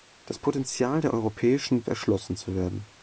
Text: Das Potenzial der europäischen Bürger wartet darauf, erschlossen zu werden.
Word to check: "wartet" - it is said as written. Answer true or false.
false